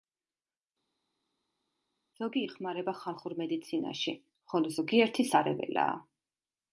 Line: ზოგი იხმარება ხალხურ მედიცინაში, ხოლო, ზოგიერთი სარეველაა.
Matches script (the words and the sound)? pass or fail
pass